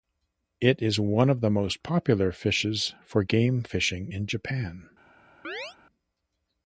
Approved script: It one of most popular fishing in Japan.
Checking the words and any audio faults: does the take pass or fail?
fail